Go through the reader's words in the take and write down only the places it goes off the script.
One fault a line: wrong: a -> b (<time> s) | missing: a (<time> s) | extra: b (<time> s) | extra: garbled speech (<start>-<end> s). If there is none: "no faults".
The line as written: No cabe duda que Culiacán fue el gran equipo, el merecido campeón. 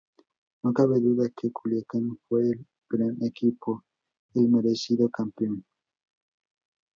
no faults